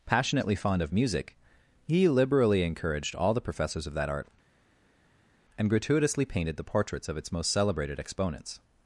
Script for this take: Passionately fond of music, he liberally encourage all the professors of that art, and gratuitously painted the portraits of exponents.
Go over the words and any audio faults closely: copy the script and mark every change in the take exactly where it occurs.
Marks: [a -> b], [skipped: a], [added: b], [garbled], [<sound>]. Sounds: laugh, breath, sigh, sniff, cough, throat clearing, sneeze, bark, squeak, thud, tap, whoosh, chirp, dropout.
Passionately fond of music, he liberally [encourage -> encouraged] all the professors of that art, and gratuitously painted the portraits of [added: its most celebrated] exponents.